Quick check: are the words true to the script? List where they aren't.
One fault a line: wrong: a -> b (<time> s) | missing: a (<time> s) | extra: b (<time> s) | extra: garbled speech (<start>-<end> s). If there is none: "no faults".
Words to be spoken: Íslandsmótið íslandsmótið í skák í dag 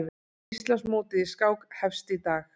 missing: íslandsmótið (1.2 s)
extra: hefst (1.8 s)